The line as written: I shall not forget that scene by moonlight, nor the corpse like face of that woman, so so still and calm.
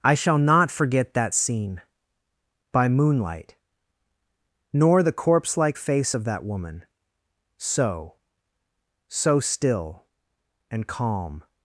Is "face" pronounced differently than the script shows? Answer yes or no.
no